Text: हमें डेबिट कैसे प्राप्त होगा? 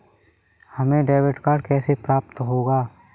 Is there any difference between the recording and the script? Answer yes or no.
yes